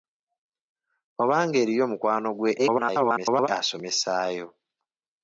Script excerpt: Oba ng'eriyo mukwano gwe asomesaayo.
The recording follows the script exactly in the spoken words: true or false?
false